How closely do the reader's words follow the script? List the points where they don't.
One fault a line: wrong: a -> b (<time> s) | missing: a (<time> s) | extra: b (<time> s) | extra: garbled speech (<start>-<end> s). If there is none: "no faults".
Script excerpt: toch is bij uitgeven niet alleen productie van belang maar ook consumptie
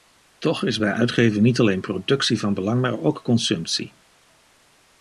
no faults